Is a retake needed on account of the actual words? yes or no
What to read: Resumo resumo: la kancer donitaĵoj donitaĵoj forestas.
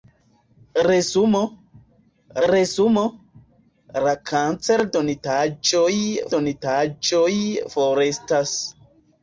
no